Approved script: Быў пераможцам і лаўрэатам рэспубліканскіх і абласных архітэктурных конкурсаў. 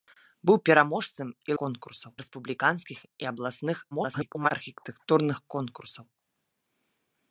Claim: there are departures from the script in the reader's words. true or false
true